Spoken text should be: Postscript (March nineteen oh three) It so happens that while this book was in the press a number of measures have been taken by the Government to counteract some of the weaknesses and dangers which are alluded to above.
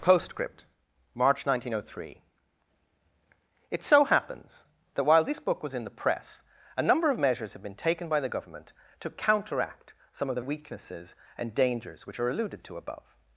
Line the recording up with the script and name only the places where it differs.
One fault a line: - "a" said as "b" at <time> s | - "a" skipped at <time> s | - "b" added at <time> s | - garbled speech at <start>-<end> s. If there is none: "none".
none